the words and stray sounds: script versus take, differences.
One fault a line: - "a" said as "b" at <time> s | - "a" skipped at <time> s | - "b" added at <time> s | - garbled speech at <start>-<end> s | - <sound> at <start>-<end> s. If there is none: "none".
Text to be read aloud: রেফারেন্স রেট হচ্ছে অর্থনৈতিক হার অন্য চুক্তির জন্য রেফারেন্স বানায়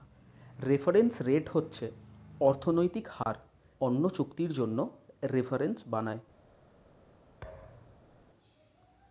- dropout at 3.2-3.3 s
- thud at 7.4-8.1 s